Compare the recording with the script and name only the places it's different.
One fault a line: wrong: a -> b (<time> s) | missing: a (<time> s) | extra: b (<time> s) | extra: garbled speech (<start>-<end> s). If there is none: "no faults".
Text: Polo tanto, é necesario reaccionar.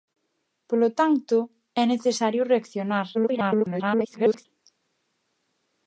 extra: garbled speech (3.1-4.5 s)